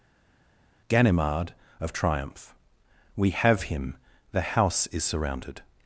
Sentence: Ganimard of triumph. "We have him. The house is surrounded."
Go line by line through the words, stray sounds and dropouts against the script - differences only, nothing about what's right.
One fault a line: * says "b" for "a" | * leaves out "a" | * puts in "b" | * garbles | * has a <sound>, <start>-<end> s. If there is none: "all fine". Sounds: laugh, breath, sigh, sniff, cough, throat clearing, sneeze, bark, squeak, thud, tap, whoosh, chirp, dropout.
all fine